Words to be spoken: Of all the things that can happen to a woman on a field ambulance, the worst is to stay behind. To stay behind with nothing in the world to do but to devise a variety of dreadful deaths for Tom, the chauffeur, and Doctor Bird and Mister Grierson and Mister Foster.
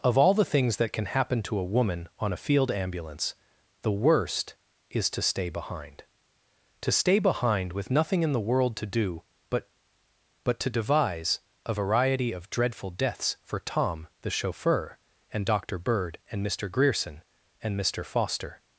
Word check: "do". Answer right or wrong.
right